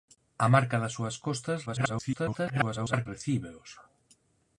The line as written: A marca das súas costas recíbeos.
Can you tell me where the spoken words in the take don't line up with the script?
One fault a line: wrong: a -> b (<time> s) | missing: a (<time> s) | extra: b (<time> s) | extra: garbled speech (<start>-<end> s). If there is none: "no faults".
extra: garbled speech (1.7-3.1 s)